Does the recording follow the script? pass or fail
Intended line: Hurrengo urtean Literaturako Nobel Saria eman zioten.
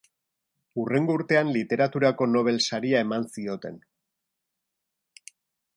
pass